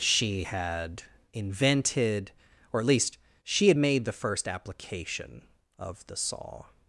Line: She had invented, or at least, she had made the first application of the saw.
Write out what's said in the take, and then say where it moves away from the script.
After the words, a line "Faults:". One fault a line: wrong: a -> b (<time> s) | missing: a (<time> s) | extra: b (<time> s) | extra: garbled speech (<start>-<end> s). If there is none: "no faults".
She had invented, or at least, she had made the first application of the saw.
Faults:
no faults